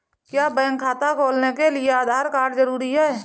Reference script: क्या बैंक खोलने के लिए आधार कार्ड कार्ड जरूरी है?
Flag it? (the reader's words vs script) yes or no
yes